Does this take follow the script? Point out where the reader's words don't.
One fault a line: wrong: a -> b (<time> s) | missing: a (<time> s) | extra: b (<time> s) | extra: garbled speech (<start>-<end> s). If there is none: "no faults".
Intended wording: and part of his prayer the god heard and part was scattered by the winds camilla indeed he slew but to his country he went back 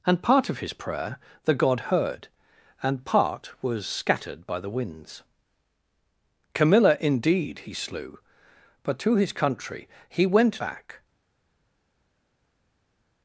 no faults